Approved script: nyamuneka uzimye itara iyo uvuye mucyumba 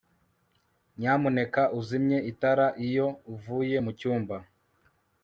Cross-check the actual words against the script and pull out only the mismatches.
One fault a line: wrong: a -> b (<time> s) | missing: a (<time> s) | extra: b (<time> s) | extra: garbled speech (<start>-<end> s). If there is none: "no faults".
no faults